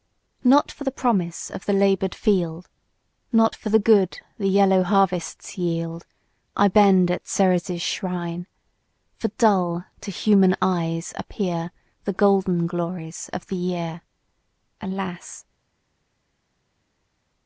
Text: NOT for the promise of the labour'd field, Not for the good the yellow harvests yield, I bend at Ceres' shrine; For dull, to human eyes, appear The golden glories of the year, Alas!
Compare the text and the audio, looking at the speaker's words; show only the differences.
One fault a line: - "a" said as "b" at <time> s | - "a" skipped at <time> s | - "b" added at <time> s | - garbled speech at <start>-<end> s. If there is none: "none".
none